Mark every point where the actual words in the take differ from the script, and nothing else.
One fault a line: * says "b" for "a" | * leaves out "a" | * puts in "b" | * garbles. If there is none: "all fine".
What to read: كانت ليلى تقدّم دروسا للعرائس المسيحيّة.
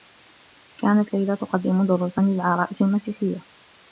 all fine